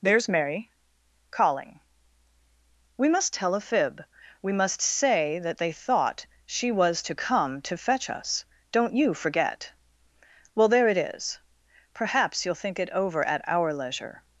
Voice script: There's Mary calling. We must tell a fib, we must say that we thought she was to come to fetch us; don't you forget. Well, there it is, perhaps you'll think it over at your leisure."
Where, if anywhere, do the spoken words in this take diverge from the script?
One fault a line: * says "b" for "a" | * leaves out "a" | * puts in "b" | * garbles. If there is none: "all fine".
* says "they" for "we"
* says "our" for "your"